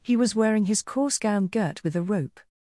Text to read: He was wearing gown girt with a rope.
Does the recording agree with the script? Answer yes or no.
no